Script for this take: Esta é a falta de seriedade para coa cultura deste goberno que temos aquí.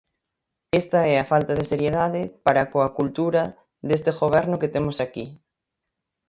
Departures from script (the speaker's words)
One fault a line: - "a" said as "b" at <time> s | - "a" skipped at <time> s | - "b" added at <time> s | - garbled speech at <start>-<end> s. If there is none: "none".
none